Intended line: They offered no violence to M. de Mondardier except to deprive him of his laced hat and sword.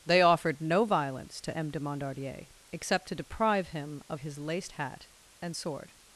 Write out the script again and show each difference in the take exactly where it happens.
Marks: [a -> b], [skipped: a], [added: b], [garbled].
They offered no violence to M. de Mondardier except to deprive him of his laced hat and sword.